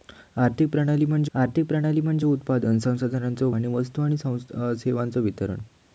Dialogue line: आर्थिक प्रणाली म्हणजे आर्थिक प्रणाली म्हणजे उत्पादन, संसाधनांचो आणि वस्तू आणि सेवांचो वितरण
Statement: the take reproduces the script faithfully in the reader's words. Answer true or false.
true